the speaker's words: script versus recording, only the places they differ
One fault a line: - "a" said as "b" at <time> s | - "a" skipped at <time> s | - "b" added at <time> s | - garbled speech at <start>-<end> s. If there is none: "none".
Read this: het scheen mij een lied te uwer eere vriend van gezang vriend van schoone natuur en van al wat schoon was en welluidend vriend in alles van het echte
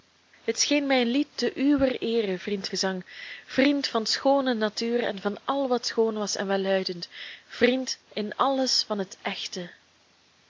- "van" skipped at 2.7 s